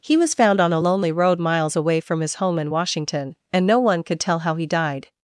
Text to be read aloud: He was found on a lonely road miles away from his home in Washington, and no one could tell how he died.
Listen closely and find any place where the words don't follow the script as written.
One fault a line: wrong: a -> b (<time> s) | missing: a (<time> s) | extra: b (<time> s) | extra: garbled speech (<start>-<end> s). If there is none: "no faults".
no faults